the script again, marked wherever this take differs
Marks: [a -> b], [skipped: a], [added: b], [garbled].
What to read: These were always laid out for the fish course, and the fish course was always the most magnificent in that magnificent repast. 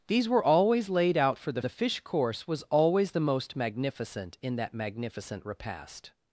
These were always laid out for the [skipped: fish course, and] the fish course was always the most magnificent in that magnificent repast.